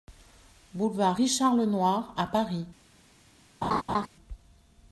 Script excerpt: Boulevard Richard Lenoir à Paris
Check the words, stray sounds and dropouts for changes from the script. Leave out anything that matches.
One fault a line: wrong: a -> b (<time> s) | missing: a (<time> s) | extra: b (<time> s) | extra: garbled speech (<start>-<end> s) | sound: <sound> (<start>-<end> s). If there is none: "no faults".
sound: laugh (3.6-4.1 s)